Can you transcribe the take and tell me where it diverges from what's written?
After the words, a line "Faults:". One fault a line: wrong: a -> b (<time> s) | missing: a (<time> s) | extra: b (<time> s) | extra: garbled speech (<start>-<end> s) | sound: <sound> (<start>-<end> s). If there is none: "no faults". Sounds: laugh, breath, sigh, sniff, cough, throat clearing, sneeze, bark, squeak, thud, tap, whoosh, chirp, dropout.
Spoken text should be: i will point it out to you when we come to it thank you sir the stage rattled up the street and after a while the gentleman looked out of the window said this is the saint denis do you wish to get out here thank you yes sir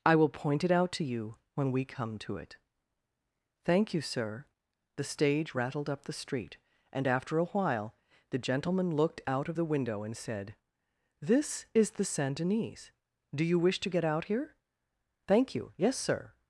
i will point it out to you when we come to it thank you sir the stage rattled up the street and after a while the gentleman looked out of the window and said this is the saint denis do you wish to get out here thank you yes sir
Faults:
extra: and (10.0 s)